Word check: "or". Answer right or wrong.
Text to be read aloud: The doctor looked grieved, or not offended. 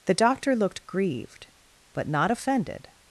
wrong